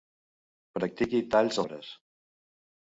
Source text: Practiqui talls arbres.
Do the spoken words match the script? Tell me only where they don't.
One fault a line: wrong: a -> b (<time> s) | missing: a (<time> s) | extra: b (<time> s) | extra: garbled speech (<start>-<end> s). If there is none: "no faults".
no faults